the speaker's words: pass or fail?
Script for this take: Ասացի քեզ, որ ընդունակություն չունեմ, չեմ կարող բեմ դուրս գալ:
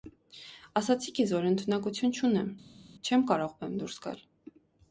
pass